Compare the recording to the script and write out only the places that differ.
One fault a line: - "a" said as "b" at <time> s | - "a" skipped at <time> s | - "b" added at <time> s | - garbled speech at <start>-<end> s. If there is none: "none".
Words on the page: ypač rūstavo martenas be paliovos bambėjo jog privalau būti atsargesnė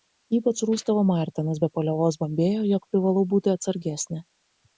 none